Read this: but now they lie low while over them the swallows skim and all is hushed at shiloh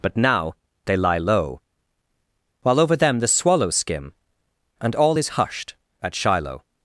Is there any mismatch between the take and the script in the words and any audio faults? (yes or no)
no